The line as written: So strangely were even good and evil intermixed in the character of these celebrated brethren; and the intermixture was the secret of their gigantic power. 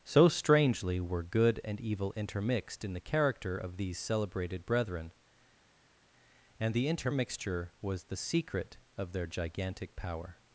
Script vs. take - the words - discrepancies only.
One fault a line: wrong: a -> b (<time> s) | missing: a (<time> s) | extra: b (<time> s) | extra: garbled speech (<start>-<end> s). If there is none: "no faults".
missing: even (1.2 s)